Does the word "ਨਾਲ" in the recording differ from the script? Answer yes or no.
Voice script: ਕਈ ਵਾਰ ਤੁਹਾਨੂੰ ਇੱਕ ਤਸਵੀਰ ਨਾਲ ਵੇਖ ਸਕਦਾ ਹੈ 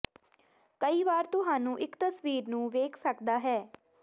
yes